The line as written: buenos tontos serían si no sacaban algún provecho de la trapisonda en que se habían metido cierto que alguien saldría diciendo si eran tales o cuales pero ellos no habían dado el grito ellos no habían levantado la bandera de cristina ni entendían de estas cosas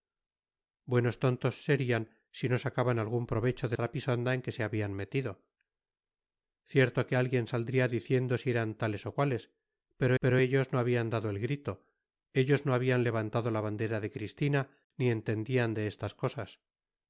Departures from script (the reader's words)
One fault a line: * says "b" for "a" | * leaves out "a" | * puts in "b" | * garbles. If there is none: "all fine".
* leaves out "la"
* puts in "pero"